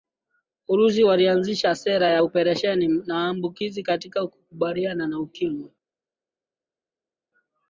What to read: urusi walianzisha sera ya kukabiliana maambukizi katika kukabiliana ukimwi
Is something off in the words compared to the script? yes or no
yes